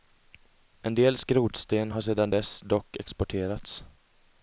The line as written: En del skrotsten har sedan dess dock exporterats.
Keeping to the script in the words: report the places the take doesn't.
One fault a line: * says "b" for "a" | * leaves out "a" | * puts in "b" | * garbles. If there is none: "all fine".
all fine